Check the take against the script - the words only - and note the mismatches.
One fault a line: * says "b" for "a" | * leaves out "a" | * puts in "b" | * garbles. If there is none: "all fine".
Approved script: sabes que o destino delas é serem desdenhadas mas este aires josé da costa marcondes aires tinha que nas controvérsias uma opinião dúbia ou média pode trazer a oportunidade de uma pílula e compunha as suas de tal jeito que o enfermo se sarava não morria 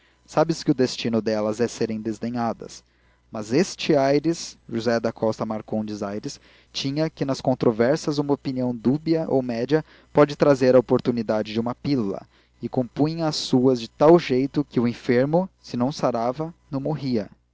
* puts in "não"